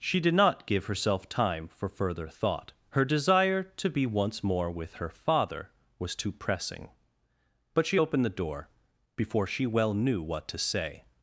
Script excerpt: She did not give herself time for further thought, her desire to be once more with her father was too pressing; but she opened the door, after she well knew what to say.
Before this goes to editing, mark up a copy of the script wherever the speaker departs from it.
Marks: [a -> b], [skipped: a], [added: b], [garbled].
She did not give herself time for further thought, her desire to be once more with her father was too pressing; but she opened the door, [after -> before] she well knew what to say.